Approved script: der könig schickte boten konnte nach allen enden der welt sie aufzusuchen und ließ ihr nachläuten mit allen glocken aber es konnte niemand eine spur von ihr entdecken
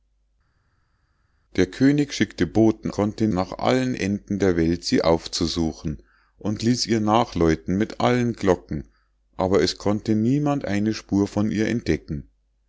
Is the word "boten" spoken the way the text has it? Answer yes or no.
yes